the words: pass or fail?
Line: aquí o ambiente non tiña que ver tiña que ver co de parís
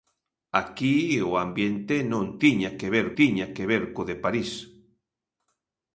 pass